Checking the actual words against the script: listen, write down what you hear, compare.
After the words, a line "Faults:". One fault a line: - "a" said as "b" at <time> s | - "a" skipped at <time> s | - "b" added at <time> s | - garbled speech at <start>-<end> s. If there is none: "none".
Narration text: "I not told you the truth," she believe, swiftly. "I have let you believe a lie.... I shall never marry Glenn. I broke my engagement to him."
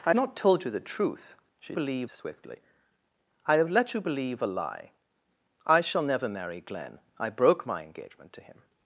"I not told you the truth," she believe, swiftly. "I have let you believe a lie.... I shall never marry Glenn. I broke my engagement to him."
Faults:
none